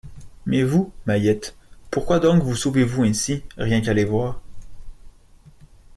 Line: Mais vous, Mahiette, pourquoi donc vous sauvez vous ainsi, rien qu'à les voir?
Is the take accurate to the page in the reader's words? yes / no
yes